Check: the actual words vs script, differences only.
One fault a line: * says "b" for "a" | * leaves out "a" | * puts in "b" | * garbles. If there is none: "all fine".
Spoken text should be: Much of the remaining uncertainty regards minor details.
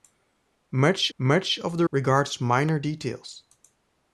* puts in "much"
* leaves out "remaining uncertainty"